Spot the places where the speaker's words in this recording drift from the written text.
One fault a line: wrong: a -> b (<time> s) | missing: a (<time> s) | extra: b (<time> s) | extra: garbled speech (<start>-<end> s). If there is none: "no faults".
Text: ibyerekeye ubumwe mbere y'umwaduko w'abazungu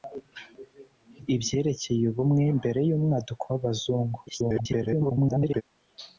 extra: garbled speech (4.3-5.6 s)